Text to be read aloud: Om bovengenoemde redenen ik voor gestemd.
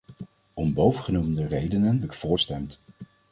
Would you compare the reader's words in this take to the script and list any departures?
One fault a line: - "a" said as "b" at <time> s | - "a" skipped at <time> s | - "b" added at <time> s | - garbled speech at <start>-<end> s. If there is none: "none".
none